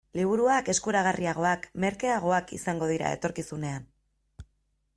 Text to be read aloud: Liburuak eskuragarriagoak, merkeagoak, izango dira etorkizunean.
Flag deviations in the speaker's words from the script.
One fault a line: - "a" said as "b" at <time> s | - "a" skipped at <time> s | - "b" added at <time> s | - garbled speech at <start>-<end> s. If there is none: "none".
none